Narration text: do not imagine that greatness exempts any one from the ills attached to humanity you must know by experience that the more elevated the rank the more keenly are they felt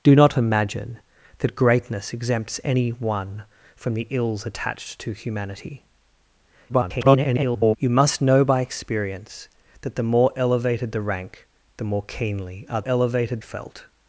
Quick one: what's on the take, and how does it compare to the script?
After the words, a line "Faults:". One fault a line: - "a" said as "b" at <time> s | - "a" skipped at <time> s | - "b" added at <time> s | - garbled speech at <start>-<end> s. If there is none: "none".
do not imagine that greatness exempts any one from the ills attached to humanity [garbled] you must know by experience that the more elevated the rank the more keenly are elevated felt
Faults:
- garbled speech at 6.7-7.8 s
- "they" said as "elevated" at 12.8 s